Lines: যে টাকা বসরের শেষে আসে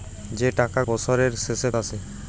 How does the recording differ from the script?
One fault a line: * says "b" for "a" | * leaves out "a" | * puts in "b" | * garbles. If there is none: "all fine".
all fine